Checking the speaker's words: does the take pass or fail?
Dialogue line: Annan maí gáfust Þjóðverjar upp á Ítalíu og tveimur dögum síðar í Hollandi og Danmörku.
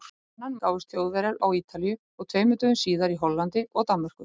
fail